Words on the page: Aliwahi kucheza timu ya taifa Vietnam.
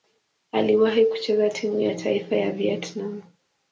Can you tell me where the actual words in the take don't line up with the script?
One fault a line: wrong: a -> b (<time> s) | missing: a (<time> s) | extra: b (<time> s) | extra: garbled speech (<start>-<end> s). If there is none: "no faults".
extra: ya (2.3 s)